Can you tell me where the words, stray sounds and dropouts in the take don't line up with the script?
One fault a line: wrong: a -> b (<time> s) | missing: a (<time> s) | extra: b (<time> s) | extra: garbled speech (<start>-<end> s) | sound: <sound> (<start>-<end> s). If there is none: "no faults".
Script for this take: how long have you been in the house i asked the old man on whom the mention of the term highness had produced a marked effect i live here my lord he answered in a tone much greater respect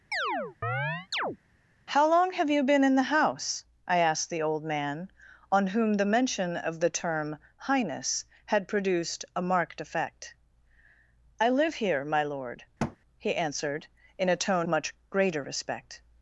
sound: chirp (0.1-1.4 s)
sound: thud (12.8-13.0 s)